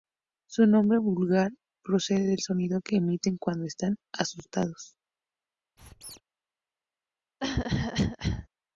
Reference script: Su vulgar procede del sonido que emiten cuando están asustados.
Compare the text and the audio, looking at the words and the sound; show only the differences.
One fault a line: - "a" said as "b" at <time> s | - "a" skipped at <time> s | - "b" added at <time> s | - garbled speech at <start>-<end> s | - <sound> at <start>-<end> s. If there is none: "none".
- "nombre" added at 0.7 s
- squeak at 5.8-6.2 s
- cough at 7.4-8.5 s